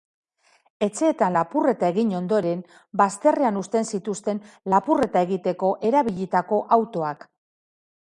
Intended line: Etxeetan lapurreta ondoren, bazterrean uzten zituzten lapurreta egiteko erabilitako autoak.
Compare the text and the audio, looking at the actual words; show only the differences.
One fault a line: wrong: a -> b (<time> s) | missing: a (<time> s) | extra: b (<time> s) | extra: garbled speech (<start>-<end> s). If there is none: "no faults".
extra: egin (2.0 s)